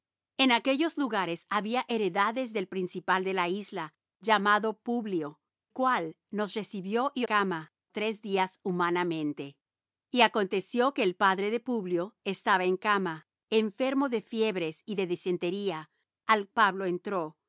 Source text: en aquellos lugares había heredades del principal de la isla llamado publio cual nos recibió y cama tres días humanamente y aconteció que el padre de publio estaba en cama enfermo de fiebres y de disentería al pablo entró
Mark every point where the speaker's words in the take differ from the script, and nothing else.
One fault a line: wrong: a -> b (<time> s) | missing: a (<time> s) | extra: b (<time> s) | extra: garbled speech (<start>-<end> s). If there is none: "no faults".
no faults